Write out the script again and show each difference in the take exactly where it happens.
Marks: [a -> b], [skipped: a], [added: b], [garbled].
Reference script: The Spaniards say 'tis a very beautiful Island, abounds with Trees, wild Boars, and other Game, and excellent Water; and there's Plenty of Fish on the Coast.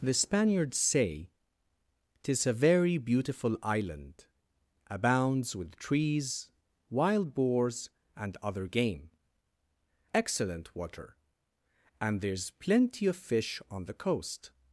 The Spaniards say 'tis a very beautiful Island, abounds with Trees, wild Boars, and other Game, [skipped: and] excellent Water; and there's Plenty of Fish on the Coast.